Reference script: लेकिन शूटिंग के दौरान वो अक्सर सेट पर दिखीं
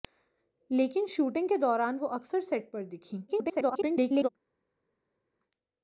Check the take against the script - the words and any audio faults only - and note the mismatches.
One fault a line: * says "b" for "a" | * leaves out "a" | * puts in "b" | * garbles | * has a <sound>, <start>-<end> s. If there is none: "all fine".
* garbles